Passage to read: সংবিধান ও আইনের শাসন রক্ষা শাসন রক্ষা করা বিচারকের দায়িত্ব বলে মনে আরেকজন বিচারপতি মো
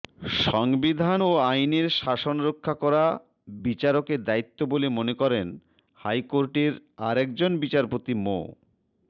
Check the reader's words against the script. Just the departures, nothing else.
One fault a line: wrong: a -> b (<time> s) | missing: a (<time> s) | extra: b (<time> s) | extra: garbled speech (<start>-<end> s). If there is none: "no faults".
missing: শাসন রক্ষা (2.7 s)
extra: করেন হাইকোর্টের (5.1 s)